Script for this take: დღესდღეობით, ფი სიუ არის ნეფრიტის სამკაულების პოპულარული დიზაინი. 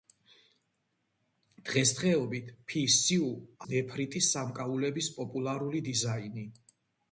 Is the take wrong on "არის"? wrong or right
wrong